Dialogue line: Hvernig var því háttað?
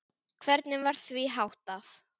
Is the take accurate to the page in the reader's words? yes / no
yes